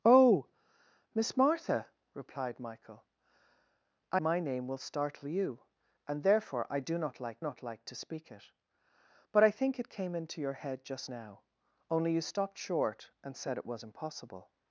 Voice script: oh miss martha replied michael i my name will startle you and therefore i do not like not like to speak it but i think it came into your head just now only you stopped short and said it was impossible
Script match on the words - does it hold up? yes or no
yes